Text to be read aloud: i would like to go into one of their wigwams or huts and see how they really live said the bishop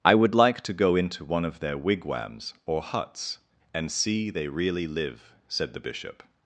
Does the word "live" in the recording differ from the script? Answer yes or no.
no